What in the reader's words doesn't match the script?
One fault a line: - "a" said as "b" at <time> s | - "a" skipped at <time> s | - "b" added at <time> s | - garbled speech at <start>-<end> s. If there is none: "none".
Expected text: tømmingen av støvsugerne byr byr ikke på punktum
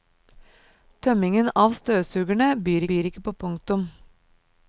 none